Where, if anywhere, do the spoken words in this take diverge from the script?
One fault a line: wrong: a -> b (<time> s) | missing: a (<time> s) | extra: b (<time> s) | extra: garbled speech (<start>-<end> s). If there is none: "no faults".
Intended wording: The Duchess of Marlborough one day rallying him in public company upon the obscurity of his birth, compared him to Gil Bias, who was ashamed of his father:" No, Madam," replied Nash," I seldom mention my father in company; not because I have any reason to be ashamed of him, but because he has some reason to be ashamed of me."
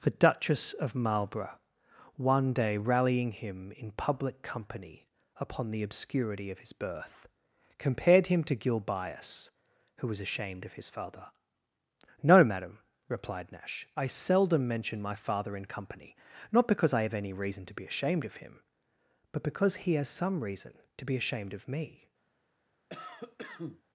no faults